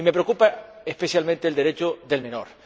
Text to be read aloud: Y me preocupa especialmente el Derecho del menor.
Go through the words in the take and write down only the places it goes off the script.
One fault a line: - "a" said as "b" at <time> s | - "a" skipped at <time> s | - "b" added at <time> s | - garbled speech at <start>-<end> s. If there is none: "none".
none